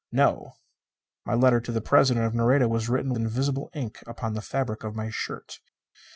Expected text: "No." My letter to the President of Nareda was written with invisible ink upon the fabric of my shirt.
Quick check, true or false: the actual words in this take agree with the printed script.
false